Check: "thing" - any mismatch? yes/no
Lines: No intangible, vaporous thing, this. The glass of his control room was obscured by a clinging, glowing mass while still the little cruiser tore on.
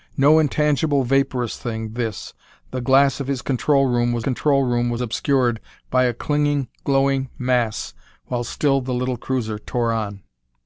no